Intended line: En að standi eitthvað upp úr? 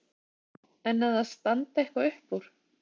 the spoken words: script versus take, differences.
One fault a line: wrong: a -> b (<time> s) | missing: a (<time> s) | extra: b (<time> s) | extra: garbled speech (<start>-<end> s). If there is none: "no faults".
extra: það (1.2 s)